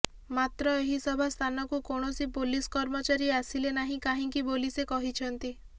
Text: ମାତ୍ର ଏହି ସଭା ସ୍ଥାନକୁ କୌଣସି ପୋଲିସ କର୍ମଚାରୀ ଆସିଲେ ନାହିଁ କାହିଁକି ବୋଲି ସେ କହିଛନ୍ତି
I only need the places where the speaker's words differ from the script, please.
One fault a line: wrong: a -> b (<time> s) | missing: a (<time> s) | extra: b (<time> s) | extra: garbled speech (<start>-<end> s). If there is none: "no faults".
no faults